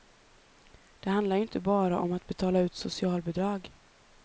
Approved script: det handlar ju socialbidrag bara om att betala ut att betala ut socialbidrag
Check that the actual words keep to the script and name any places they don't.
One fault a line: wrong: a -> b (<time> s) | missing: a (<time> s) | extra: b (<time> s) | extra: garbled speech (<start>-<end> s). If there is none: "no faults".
wrong: socialbidrag -> inte (1.4 s)
missing: att betala ut (2.7 s)